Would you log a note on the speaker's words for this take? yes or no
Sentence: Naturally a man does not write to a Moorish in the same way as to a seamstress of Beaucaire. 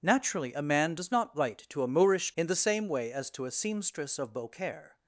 no